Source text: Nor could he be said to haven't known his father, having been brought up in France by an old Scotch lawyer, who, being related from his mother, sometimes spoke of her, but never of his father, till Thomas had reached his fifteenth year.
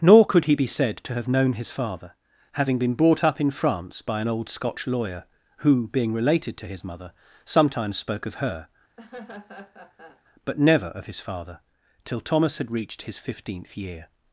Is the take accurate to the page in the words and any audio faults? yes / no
no